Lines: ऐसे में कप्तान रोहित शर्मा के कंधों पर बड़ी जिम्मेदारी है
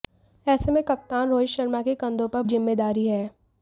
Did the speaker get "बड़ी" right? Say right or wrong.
wrong